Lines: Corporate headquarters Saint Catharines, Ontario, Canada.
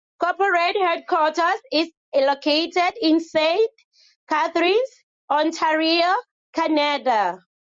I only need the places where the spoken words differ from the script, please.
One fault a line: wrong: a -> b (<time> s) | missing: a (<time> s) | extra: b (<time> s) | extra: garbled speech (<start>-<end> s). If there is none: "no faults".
extra: is located in (1.7 s)